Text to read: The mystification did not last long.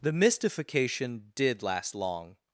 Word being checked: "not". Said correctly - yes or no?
no